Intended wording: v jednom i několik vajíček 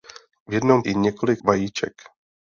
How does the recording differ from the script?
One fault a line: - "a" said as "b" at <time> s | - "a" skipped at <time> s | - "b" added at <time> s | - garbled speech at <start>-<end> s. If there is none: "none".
none